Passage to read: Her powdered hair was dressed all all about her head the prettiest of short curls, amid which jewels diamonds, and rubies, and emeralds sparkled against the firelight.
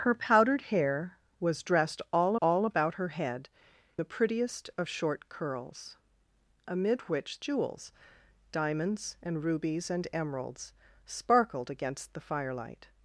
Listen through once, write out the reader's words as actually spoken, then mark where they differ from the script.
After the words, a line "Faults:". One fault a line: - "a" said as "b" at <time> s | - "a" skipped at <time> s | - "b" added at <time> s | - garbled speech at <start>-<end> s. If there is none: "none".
Her powdered hair was dressed all all about her head the prettiest of short curls, amid which jewels diamonds, and rubies, and emeralds sparkled against the firelight.
Faults:
none